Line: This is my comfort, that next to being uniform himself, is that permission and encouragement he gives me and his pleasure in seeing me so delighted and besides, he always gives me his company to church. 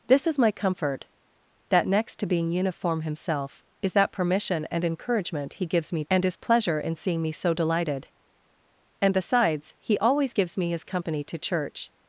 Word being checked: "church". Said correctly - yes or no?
yes